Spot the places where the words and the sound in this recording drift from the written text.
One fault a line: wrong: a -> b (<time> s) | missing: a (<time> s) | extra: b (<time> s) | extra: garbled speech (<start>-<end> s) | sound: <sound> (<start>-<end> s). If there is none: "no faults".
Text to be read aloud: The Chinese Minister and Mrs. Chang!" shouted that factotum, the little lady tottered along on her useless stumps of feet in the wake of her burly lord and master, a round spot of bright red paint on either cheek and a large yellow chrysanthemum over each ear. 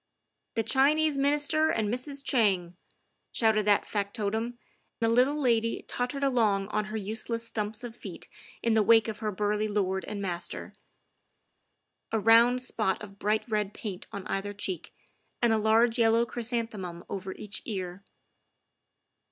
no faults